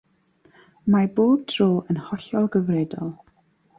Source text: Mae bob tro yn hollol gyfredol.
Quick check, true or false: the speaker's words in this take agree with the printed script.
true